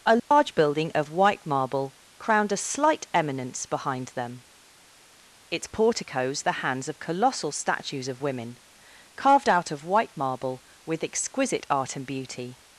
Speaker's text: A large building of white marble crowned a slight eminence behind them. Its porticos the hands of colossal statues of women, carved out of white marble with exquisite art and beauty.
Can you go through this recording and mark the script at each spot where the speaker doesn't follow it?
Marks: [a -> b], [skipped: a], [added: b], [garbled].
A large building of white marble crowned a slight eminence behind them. Its porticos the hands of colossal statues of women, carved out of white marble with exquisite art and beauty.